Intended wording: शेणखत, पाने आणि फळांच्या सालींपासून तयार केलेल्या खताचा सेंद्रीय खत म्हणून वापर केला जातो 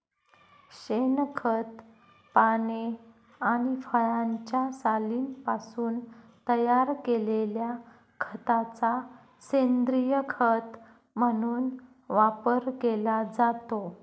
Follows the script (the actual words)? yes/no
yes